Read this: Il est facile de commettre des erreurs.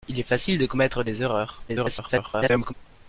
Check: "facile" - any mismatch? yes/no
no